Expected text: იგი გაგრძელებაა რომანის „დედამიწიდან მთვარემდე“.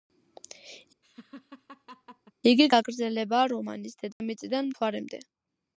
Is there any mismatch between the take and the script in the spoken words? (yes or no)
no